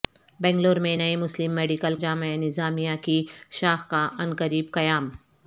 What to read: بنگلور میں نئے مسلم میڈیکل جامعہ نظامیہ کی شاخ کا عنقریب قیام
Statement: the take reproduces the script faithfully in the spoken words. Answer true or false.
true